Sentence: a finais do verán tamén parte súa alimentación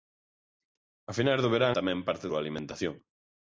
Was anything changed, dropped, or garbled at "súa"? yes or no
no